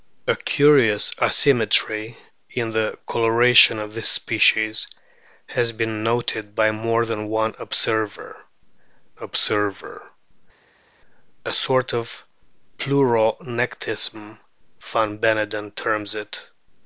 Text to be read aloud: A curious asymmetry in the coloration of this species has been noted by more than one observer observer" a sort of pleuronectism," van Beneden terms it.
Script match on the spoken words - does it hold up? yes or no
yes